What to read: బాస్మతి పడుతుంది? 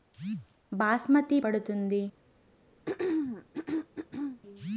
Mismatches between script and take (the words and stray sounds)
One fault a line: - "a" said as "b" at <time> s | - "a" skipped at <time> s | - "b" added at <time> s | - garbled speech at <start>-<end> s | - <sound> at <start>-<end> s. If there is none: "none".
- throat clearing at 2.9-4.4 s